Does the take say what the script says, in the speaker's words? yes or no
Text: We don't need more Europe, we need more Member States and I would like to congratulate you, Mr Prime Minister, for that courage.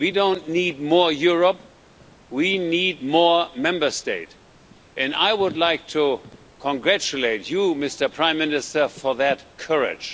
yes